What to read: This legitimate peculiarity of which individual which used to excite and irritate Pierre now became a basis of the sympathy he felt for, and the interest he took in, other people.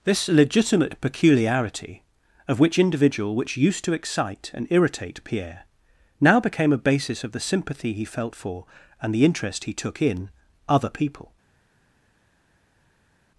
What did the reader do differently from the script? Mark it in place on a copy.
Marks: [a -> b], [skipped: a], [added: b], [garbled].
This legitimate peculiarity of which individual which used to excite and irritate Pierre now became a basis of the sympathy he felt for, and the interest he took in, other people.